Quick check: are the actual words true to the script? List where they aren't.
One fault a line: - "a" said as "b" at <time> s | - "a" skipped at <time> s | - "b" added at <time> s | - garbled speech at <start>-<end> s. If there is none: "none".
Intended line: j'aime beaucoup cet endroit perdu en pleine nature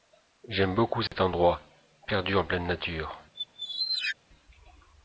none